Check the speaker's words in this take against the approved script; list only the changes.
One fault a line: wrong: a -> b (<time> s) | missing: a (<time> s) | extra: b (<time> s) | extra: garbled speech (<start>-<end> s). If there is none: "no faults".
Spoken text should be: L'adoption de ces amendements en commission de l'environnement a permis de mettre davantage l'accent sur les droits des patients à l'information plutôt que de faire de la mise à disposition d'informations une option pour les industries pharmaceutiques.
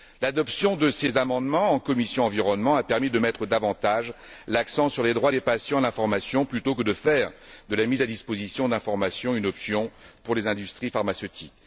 no faults